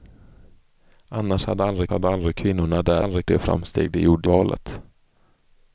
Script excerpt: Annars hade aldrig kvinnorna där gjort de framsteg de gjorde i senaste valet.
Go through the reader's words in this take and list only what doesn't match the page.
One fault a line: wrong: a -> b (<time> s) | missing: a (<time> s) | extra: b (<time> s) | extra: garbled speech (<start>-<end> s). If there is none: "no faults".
extra: hade aldrig (1.9 s)
wrong: gjort -> aldrig (3.0 s)
missing: i senaste (4.3 s)